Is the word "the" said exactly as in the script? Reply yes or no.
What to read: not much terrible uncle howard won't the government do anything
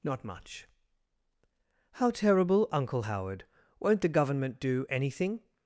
yes